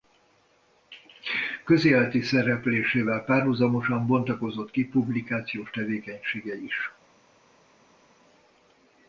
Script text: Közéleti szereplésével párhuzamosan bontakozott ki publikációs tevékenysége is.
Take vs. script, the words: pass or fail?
pass